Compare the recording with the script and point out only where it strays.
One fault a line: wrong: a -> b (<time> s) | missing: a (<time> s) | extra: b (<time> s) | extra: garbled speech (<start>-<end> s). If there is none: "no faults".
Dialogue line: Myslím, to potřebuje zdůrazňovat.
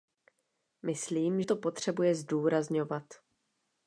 no faults